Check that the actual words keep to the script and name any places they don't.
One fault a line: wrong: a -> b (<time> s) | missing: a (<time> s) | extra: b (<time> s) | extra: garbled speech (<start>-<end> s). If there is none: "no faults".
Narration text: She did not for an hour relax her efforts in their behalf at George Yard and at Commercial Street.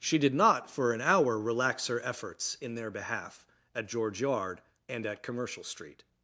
no faults